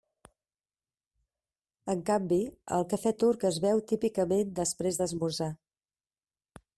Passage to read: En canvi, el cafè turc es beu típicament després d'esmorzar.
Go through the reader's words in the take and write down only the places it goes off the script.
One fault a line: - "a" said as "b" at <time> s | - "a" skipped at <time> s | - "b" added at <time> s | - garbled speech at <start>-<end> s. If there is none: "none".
none